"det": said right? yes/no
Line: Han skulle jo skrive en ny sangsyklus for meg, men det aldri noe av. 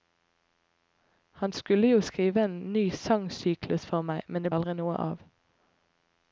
yes